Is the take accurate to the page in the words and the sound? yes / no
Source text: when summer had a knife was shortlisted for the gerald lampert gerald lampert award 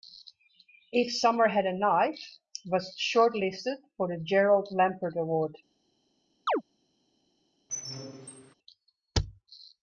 no